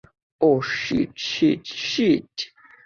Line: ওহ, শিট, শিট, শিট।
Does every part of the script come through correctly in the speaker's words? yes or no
yes